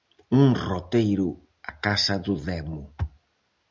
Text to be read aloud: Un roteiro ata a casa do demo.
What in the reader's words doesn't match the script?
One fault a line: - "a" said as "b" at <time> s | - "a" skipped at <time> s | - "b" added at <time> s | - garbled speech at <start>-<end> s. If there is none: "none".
- "ata" skipped at 1.3 s